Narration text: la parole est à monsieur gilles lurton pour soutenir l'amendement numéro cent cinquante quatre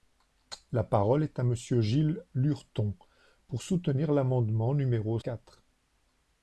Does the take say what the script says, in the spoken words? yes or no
no